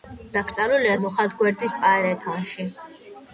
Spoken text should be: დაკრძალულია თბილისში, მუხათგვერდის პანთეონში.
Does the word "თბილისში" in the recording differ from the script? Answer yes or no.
yes